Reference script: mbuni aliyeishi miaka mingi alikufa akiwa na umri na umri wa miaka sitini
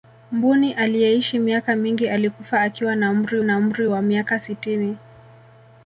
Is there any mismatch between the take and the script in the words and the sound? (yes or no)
no